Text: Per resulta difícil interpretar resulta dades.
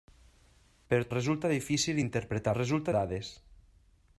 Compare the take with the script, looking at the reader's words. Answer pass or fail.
pass